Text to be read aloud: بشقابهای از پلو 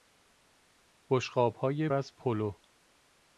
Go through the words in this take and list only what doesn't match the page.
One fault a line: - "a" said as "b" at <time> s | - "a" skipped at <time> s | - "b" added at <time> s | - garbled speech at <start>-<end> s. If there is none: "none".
none